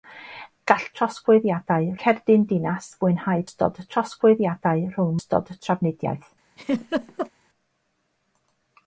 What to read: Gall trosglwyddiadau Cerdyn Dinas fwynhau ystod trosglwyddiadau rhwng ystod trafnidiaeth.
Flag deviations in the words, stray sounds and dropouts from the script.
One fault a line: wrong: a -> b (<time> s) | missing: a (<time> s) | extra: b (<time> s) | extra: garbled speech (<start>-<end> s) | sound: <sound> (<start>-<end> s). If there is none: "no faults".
sound: laugh (6.6-7.3 s)